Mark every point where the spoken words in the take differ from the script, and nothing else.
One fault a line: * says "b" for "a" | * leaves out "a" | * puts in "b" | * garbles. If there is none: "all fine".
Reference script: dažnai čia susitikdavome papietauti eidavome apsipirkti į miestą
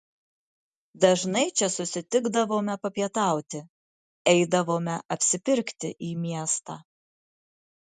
all fine